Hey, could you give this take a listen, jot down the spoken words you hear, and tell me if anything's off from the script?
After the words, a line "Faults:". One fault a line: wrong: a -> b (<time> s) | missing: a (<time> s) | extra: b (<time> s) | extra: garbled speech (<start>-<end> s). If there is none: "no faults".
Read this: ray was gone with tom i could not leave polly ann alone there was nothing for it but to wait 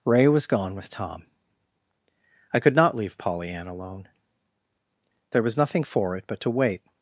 ray was gone with tom i could not leave polly ann alone there was nothing for it but to wait
Faults:
no faults